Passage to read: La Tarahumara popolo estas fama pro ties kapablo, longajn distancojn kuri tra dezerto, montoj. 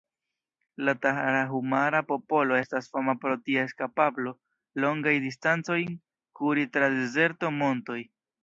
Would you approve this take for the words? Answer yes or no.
yes